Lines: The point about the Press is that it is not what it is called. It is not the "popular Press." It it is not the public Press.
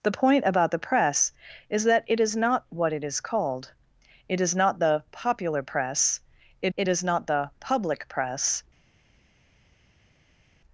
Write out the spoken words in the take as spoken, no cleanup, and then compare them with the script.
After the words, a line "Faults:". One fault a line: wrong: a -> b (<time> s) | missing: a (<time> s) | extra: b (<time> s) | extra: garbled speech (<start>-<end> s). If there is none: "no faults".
The point about the Press is that it is not what it is called. It is not the "popular Press." It it is not the public Press.
Faults:
no faults